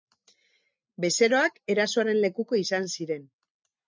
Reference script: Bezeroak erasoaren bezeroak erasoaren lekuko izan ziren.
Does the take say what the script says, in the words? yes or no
no